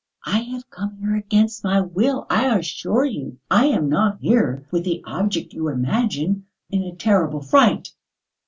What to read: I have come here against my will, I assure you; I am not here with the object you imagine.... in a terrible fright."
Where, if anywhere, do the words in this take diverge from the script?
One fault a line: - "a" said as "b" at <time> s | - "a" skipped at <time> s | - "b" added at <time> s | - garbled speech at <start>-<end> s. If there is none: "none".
none